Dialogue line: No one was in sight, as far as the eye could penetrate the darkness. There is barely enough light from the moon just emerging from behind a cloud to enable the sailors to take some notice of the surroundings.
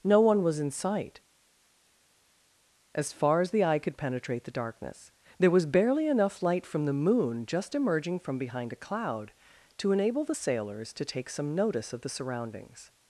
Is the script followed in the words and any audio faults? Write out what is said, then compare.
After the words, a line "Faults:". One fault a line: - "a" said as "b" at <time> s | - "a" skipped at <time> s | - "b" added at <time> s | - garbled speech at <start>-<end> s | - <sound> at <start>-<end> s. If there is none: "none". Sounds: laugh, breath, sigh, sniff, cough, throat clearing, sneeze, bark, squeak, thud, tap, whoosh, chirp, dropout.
No one was in sight, as far as the eye could penetrate the darkness. There was barely enough light from the moon just emerging from behind a cloud to enable the sailors to take some notice of the surroundings.
Faults:
- "is" said as "was" at 5.5 s